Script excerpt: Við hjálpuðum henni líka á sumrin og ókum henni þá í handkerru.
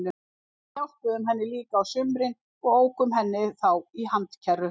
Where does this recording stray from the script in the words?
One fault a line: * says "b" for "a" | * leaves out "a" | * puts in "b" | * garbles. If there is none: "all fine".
all fine